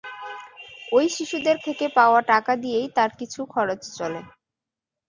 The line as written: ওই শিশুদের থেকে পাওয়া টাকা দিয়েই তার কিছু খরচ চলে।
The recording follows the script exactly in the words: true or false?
true